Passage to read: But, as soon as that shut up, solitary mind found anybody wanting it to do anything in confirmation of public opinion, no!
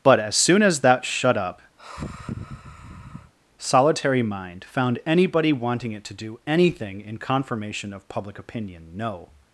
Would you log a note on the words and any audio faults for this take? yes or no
yes